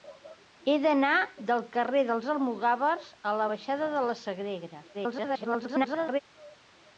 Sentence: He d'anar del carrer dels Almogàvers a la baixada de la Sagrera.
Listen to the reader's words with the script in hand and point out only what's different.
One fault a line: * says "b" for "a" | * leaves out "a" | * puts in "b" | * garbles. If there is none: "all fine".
* garbles